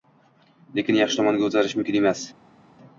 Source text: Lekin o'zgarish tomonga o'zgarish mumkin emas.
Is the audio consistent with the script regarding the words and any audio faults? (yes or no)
no